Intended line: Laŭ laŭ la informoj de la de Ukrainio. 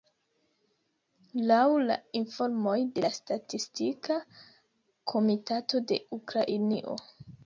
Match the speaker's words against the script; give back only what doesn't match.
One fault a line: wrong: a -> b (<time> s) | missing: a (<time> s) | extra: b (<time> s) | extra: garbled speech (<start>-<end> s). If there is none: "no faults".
missing: laŭ (1.6 s)
extra: statistika komitato (3.2 s)